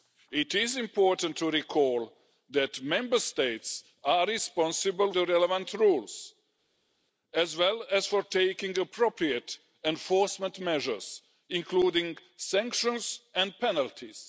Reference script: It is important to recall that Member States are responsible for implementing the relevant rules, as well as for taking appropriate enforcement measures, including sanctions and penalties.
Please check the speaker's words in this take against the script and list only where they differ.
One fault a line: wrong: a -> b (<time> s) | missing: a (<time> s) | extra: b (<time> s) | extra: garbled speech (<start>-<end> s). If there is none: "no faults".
missing: for implementing (5.1 s)